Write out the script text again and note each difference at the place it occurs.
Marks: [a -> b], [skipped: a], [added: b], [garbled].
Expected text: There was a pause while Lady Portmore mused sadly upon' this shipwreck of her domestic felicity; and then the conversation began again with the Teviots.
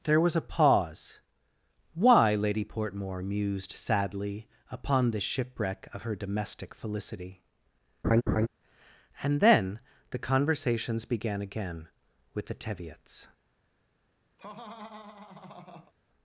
There was a pause [while -> why] Lady Portmore mused sadly upon' this shipwreck of her domestic felicity; and then the [conversation -> conversations] began again with the Teviots.